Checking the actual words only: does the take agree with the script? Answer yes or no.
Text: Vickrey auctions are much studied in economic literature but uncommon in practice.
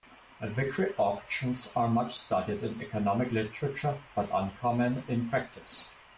yes